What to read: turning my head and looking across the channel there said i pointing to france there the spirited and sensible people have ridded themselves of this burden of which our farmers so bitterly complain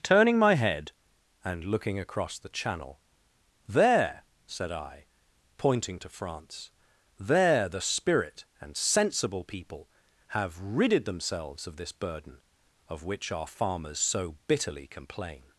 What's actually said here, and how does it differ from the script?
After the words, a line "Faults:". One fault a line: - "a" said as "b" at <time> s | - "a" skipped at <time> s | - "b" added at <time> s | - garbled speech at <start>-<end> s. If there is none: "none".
turning my head and looking across the channel there said i pointing to france there the spirit and sensible people have ridded themselves of this burden of which our farmers so bitterly complain
Faults:
- "spirited" said as "spirit" at 7.8 s